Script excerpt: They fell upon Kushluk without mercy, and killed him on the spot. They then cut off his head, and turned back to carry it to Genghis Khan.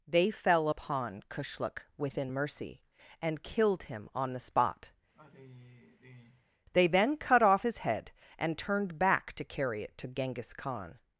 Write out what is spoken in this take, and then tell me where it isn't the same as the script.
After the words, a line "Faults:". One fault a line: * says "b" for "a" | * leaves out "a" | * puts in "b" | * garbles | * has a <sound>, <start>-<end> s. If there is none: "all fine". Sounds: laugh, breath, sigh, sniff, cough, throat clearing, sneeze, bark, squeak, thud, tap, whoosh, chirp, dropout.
They fell upon Kushluk within mercy, and killed him on the spot. They then cut off his head, and turned back to carry it to Genghis Khan.
Faults:
* says "within" for "without"
* has a sigh, 5.1-6.4 s